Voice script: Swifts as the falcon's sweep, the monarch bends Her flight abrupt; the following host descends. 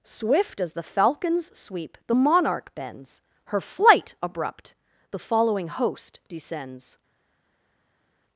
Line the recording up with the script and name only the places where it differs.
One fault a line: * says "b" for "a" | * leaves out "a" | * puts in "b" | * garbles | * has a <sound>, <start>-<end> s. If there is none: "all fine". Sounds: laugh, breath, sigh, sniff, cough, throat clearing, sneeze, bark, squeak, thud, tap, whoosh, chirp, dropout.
* says "Swift" for "Swifts"